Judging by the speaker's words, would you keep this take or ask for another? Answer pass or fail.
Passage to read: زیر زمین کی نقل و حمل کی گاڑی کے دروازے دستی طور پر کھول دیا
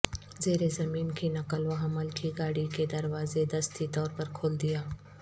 pass